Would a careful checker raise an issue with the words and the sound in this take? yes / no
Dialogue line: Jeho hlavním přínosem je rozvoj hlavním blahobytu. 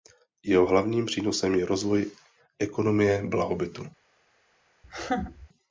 yes